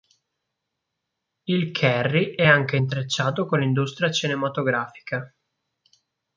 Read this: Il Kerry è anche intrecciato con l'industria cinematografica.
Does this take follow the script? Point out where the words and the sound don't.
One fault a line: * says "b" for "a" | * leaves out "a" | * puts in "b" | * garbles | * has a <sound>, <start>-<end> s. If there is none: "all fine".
all fine